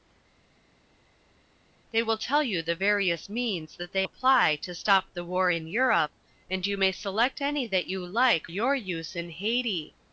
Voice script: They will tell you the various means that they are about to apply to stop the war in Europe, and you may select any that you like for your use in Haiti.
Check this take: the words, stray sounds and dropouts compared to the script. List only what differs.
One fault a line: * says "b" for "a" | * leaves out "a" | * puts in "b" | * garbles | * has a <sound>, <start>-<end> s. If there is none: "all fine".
* leaves out "are about to"
* leaves out "for"